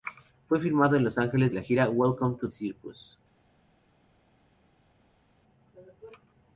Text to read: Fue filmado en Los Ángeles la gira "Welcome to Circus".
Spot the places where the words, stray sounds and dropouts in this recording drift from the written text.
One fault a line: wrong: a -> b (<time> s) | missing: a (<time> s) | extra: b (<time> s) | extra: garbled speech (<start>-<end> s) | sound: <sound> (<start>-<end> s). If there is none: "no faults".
no faults